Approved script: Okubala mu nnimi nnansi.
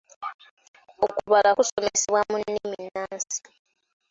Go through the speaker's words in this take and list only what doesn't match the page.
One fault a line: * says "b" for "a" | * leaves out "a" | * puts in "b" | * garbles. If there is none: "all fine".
* puts in "kusomesebwa"